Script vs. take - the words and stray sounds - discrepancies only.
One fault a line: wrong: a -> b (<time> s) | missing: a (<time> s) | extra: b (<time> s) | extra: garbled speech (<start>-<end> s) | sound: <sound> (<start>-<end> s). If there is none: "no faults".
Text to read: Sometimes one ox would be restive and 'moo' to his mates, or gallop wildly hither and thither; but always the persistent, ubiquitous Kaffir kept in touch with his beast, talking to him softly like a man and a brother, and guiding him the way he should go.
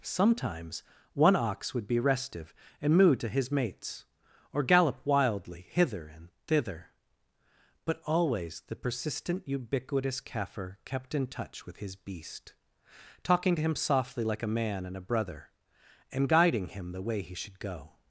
no faults